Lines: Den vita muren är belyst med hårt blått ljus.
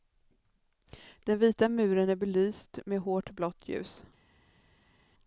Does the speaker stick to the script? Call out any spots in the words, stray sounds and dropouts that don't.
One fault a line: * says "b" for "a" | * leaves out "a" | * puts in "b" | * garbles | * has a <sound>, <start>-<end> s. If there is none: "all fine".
all fine